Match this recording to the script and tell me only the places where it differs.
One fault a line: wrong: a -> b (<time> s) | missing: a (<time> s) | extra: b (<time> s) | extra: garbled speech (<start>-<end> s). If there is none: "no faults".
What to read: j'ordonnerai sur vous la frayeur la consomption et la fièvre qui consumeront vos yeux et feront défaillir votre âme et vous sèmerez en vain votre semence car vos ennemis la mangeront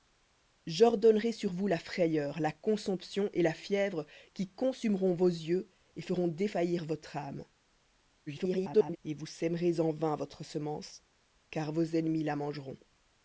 extra: garbled speech (8.3-9.0 s)